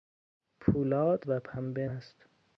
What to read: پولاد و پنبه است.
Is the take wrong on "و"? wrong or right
right